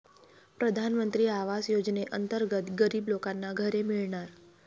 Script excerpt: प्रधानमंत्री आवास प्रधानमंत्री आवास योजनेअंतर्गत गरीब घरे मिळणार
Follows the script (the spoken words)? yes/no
no